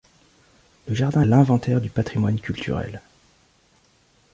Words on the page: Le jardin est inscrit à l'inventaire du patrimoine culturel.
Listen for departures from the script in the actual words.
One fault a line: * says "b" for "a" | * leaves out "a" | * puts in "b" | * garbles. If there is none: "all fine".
* leaves out "est inscrit à"